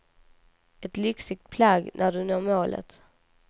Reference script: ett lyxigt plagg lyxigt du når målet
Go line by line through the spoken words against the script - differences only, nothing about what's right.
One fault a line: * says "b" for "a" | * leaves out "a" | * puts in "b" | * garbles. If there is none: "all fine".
* says "när" for "lyxigt"